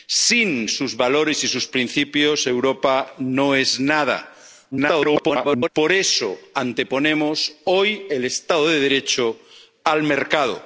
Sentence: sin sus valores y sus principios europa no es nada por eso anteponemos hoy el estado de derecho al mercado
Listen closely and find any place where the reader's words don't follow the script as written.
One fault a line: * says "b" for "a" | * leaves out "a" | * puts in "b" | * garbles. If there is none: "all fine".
* garbles